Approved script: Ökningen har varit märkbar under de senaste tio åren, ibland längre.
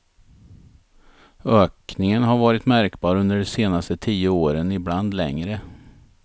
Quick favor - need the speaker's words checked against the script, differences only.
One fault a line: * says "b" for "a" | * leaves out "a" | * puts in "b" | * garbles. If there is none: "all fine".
all fine